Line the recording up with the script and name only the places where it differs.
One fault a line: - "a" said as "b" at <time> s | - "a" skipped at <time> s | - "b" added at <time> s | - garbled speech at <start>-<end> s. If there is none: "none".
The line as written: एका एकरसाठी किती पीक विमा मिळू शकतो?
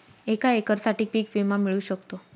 - "किती" skipped at 1.1 s